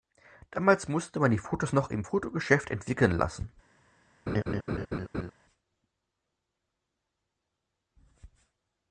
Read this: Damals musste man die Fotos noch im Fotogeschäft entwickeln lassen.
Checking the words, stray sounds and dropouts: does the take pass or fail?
fail